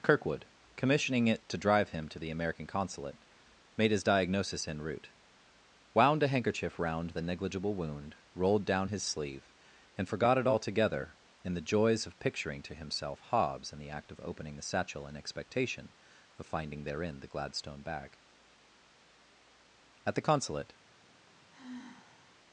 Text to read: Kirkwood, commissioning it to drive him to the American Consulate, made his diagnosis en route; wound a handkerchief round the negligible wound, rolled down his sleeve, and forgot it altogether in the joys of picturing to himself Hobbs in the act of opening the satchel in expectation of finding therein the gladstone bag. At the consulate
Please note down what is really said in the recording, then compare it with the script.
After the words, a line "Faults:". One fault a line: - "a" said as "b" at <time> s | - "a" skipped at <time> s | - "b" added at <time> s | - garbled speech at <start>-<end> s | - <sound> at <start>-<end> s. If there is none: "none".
Kirkwood, commissioning it to drive him to the American Consulate, made his diagnosis en route; wound a handkerchief round the negligible wound, rolled down his sleeve, and forgot it altogether in the joys of picturing to himself Hobbs in the act of opening the satchel in expectation of finding therein the gladstone bag. At the consulate
Faults:
- sigh at 21.5-22.3 s